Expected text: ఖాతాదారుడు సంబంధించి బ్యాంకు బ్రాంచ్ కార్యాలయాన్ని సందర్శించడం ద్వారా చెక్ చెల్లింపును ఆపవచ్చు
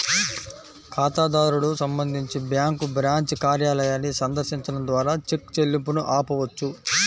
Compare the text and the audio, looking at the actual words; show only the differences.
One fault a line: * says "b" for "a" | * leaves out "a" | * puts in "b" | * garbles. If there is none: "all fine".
all fine